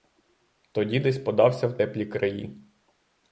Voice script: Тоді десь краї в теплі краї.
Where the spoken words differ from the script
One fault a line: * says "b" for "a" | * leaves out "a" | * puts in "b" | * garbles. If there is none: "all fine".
* says "подався" for "краї"